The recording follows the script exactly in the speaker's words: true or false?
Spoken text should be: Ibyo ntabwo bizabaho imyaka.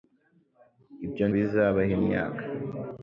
false